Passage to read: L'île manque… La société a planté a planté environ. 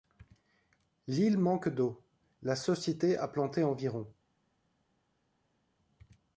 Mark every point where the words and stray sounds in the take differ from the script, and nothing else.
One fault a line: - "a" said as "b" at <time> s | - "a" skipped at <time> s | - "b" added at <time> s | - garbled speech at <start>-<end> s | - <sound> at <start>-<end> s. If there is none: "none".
- "d'eau" added at 1.7 s
- "a planté" skipped at 3.6 s